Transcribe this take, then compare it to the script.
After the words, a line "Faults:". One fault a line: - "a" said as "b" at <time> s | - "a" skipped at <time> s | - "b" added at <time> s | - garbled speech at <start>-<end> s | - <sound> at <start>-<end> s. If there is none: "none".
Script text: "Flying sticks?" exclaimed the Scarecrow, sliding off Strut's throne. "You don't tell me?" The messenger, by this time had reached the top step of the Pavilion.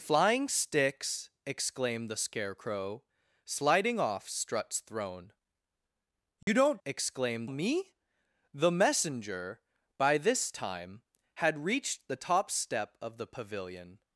"Flying sticks?" exclaimed the Scarecrow, sliding off Strut's throne. "You don't exclaimed me?" The messenger, by this time had reached the top step of the Pavilion.
Faults:
- dropout at 6.4-6.5 s
- "tell" said as "exclaimed" at 6.8 s